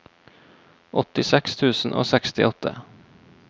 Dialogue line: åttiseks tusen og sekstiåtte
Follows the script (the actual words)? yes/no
yes